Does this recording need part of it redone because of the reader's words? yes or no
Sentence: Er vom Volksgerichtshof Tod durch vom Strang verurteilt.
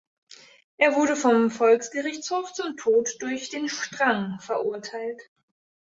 yes